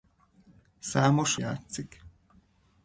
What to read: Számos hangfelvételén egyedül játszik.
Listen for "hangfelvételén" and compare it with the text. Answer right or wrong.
wrong